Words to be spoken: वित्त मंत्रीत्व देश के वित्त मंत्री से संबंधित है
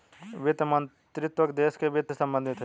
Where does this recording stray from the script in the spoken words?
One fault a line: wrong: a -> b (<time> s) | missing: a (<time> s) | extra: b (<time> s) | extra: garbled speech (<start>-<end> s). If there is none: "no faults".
missing: मंत्री (2.1 s)